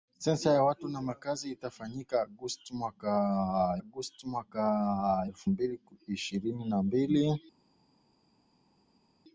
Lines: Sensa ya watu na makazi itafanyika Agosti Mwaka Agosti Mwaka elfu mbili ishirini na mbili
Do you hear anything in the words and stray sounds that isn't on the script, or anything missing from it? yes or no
no